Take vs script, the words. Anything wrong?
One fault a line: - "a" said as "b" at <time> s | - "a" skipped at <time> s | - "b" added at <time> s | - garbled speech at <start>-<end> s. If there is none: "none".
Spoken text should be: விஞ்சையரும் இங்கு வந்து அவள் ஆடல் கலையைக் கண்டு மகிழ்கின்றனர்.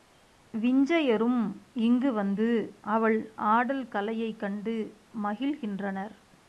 none